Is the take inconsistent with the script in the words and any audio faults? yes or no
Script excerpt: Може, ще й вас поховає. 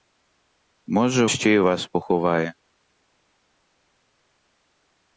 no